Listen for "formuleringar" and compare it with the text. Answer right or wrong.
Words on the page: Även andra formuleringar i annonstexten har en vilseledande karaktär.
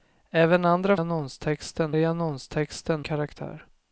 wrong